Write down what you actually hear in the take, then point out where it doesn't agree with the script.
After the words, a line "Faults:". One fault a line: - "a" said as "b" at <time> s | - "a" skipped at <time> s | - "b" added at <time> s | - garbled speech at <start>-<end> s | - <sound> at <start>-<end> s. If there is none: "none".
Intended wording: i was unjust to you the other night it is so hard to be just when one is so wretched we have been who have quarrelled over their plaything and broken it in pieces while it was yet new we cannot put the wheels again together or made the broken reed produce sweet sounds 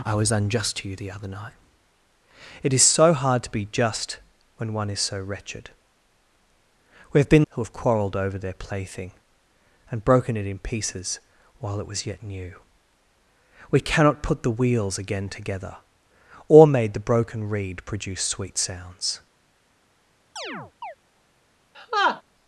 i was unjust to you the other night it is so hard to be just when one is so wretched we have been who have quarrelled over their plaything and broken it in pieces while it was yet new we cannot put the wheels again together or made the broken reed produce sweet sounds
Faults:
- chirp at 20.4-21.0 s
- laugh at 21.7-22.2 s